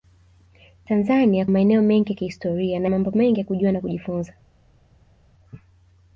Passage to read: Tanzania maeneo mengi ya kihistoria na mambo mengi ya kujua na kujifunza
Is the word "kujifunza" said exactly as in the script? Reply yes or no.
yes